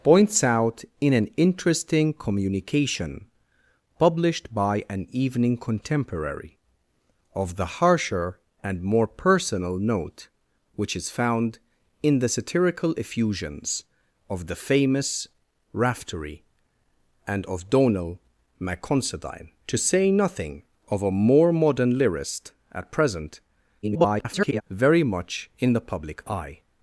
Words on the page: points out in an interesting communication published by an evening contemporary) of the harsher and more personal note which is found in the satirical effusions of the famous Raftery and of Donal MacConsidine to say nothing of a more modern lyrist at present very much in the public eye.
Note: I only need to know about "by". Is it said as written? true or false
true